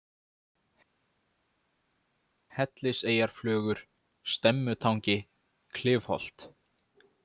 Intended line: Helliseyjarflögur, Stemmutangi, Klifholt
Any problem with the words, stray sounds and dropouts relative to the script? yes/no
no